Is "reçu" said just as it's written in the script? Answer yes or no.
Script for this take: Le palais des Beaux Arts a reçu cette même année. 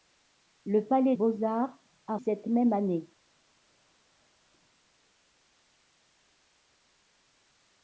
no